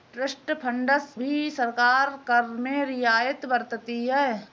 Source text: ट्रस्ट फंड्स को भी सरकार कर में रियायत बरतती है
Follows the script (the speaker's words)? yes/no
no